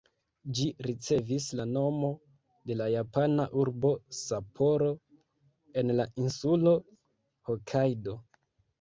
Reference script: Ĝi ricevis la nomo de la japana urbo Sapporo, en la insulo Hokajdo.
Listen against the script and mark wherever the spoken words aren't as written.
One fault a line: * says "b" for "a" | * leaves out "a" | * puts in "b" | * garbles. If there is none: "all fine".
all fine